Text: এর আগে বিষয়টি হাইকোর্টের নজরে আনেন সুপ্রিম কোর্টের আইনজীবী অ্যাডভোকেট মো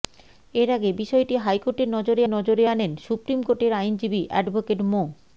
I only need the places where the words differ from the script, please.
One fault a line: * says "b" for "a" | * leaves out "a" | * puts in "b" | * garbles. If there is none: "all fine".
* puts in "নজরে"